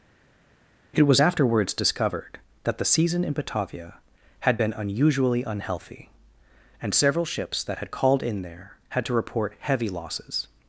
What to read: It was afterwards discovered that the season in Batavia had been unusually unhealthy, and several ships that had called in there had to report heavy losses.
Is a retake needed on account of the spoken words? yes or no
no